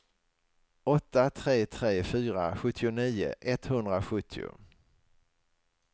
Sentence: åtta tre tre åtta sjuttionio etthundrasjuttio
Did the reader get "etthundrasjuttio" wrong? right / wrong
right